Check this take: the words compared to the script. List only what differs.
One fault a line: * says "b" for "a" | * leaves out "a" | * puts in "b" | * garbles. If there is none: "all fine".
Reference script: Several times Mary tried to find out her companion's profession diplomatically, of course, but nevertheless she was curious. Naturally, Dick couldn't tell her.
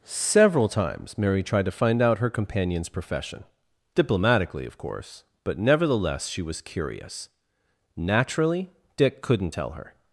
all fine